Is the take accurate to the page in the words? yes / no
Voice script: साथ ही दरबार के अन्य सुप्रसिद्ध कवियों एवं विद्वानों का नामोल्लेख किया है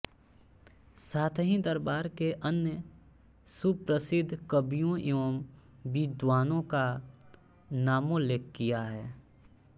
yes